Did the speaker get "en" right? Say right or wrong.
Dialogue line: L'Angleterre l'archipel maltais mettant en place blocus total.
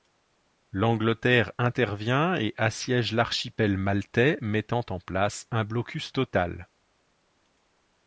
right